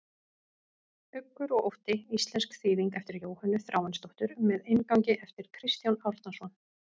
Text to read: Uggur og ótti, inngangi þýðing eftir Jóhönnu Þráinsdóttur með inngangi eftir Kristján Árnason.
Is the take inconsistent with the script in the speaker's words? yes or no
yes